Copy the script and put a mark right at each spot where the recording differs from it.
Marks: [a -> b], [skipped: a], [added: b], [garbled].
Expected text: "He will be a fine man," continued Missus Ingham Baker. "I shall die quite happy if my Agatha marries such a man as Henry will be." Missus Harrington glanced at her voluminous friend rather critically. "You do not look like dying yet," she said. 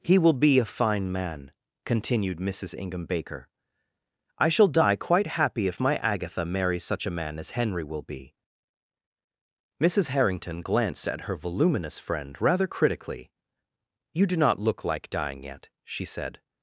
"He will be a fine man," continued Missus Ingham Baker. "I shall die quite happy if my Agatha marries such a man as Henry will be." Missus Harrington glanced at her voluminous friend rather critically. "You do not look like dying yet," she said.